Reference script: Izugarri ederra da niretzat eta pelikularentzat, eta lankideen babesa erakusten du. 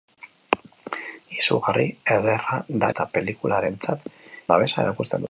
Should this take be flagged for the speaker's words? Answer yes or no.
yes